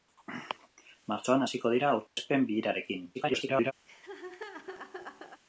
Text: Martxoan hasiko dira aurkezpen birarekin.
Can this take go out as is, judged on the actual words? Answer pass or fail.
fail